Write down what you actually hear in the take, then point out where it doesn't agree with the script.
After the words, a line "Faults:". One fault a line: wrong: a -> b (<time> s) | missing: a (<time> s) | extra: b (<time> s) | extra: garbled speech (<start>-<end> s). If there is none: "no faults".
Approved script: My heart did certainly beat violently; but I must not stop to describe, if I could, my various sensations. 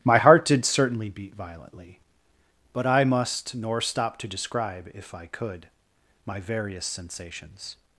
My heart did certainly beat violently; but I must nor stop to describe, if I could, my various sensations.
Faults:
wrong: not -> nor (3.5 s)